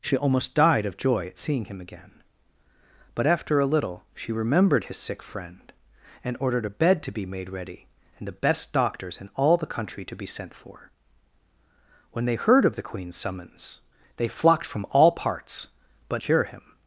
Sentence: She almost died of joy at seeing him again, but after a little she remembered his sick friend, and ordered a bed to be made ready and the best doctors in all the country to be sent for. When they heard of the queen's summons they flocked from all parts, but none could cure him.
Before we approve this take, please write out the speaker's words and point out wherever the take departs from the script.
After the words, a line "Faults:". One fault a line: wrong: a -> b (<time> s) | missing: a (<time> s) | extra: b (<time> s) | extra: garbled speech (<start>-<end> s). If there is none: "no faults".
She almost died of joy at seeing him again, but after a little she remembered his sick friend, and ordered a bed to be made ready and the best doctors in all the country to be sent for. When they heard of the queen's summons they flocked from all parts, but cure him.
Faults:
missing: none could (16.2 s)